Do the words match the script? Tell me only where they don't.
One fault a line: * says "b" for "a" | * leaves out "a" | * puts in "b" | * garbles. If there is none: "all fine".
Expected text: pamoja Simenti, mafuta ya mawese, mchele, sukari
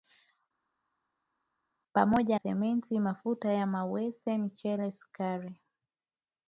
all fine